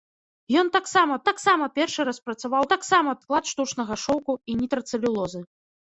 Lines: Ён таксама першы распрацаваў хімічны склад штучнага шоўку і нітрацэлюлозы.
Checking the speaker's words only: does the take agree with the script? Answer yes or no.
no